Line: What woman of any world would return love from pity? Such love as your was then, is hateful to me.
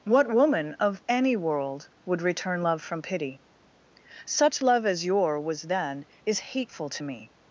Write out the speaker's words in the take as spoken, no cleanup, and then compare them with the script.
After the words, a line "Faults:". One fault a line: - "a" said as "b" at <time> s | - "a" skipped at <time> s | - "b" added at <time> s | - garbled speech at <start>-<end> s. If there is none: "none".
What woman of any world would return love from pity? Such love as your was then, is hateful to me.
Faults:
none